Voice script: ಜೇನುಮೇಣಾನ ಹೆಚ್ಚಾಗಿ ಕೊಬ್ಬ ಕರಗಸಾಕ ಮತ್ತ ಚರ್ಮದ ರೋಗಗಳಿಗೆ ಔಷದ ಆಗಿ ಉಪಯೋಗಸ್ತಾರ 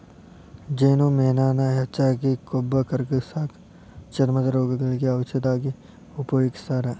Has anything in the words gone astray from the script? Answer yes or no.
yes